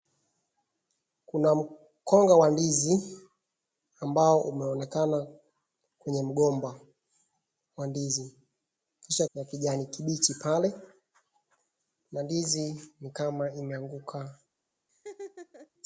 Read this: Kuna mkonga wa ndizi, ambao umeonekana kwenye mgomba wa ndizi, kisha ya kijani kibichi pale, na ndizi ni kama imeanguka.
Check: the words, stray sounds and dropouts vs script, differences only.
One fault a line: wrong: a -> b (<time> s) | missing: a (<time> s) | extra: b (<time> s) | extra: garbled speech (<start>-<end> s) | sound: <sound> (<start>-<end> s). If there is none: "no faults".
sound: laugh (14.9-15.7 s)